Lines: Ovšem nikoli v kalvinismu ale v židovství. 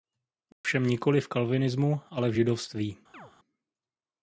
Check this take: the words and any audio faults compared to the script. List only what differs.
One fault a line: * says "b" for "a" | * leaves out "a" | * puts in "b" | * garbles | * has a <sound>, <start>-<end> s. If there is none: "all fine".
* has a dropout, 0.5-0.6 s
* has a chirp, 3.1-3.3 s